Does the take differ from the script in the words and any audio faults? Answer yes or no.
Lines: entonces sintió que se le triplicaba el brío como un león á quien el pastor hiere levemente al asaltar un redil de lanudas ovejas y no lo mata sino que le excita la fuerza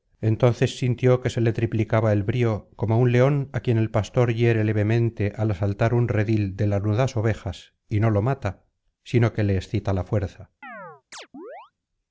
yes